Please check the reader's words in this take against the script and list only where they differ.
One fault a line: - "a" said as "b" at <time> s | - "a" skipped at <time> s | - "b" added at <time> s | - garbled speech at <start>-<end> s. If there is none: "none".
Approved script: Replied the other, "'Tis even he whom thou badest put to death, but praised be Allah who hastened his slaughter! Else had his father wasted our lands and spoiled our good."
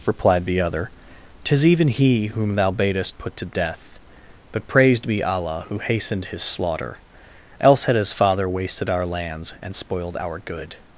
none